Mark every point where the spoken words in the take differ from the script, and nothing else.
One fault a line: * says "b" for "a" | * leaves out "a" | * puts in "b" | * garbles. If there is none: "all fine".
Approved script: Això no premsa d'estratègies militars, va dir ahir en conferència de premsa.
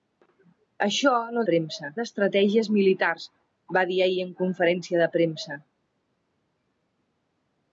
all fine